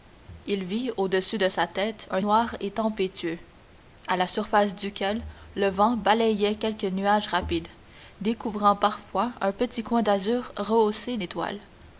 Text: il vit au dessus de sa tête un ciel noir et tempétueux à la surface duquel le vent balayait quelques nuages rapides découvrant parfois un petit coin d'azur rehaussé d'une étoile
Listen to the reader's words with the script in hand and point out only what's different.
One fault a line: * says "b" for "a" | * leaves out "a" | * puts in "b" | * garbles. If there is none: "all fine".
* leaves out "ciel"
* leaves out "d'une"